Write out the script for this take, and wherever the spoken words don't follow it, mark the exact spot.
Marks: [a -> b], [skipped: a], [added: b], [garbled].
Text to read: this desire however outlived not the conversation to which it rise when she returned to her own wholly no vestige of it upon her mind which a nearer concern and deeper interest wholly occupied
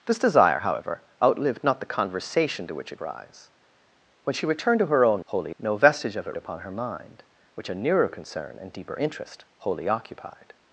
this desire however outlived not the conversation to which it rise when she returned to her own wholly no vestige of it upon her mind which a nearer concern and deeper interest wholly occupied